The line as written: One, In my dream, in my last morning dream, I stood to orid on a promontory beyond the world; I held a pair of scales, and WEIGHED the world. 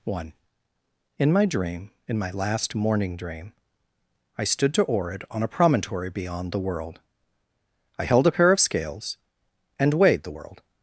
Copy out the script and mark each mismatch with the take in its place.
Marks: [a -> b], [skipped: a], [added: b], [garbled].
One, In my dream, in my last morning dream, I stood to orid on a promontory beyond the world; I held a pair of scales, and WEIGHED the world.